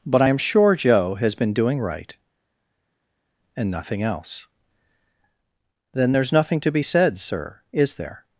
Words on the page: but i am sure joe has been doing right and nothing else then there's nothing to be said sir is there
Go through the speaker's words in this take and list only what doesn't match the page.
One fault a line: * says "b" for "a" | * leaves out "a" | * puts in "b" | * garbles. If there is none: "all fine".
all fine